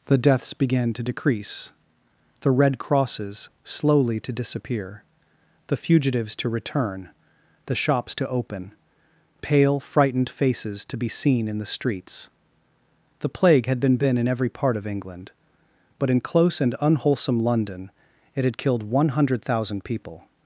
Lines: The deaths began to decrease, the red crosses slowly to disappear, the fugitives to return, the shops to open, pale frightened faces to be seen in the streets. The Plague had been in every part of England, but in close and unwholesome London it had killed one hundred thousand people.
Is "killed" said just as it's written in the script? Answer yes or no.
yes